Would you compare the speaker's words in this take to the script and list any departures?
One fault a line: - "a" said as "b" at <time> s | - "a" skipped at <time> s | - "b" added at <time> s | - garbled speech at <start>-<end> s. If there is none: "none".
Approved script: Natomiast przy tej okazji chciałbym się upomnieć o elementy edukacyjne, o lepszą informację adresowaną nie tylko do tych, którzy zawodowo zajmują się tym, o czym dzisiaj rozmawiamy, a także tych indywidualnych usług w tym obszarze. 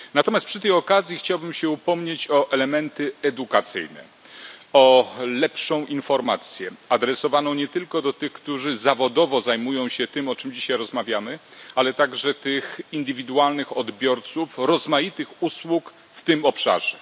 - "a" said as "ale" at 11.7 s
- "odbiorców rozmaitych" added at 13.8 s